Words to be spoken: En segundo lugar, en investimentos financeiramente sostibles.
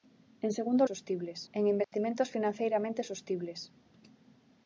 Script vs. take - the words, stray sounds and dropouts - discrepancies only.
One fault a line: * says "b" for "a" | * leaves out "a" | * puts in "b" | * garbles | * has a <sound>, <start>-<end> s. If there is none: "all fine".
* says "sostibles" for "lugar"
* has a dropout, 1.8-1.9 s